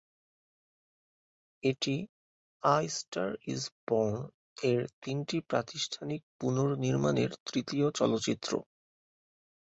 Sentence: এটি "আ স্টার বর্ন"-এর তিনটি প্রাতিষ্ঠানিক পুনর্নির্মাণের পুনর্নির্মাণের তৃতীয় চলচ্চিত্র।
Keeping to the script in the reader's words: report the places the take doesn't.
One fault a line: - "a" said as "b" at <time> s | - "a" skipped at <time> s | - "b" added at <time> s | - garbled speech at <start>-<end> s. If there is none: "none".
- "ইজ" added at 3.5 s
- "পুনর্নির্মাণের" skipped at 7.3 s